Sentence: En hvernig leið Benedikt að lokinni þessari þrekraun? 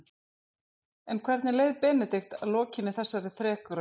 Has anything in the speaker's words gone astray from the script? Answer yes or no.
no